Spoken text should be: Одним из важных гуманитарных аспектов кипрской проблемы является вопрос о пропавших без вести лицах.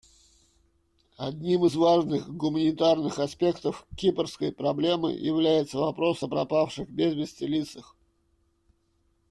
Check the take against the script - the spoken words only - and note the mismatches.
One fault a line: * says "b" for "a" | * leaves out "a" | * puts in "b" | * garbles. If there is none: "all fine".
all fine